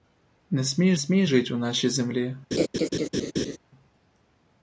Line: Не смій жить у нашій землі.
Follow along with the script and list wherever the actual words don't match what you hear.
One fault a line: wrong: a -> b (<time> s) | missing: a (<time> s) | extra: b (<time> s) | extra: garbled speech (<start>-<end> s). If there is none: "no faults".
extra: смій (0.9 s)